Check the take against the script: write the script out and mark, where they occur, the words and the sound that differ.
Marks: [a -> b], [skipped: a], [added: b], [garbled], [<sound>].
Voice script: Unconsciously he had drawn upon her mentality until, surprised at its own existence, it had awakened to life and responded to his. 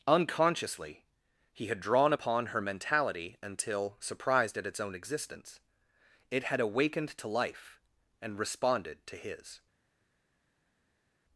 Unconsciously he had drawn upon her mentality until, surprised at its own existence, it had awakened to life and responded to his.